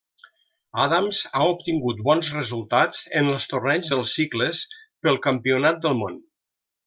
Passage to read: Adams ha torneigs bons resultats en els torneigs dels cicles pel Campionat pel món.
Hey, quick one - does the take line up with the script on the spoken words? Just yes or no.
no